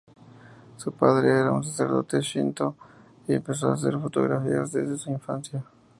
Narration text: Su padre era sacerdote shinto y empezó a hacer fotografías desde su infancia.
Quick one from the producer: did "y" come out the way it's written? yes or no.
yes